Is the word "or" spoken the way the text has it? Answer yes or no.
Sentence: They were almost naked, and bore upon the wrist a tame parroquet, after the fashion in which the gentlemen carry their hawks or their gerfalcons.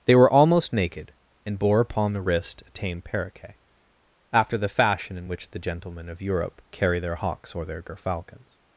yes